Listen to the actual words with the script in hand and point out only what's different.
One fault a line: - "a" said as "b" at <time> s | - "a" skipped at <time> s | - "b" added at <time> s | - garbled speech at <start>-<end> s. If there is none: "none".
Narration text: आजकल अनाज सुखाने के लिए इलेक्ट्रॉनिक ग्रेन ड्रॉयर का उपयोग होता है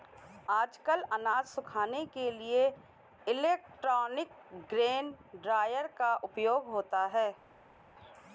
none